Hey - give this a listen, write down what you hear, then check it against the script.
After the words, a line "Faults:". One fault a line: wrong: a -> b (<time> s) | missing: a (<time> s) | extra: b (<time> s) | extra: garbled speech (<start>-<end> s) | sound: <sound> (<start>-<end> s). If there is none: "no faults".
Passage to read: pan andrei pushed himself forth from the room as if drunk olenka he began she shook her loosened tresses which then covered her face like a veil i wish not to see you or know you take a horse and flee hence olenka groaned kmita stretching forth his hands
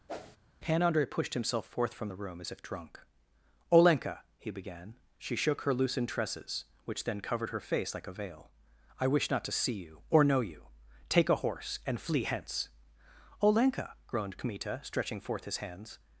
pan andrei pushed himself forth from the room as if drunk olenka he began she shook her loosened tresses which then covered her face like a veil i wish not to see you or know you take a horse and flee hence olenka groaned kmita stretching forth his hands
Faults:
sound: whoosh (0.1-0.4 s)